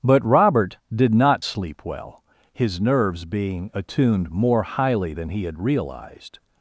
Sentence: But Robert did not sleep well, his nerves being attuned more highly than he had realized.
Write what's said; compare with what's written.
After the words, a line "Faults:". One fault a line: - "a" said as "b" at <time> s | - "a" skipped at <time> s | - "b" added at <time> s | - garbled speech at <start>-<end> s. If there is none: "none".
But Robert did not sleep well, his nerves being attuned more highly than he had realized.
Faults:
none